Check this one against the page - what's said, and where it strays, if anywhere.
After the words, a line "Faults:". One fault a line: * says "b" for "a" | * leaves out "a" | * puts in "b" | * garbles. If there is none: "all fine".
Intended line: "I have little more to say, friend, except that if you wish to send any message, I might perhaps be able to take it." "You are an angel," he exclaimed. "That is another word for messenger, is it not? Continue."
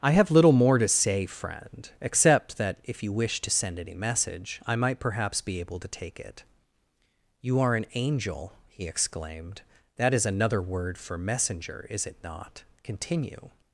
"I have little more to say, friend, except that if you wish to send any message, I might perhaps be able to take it." "You are an angel," he exclaimed. "That is another word for messenger, is it not? Continue."
Faults:
all fine